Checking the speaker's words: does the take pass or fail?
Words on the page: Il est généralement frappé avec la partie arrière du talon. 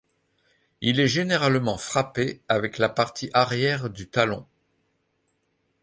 pass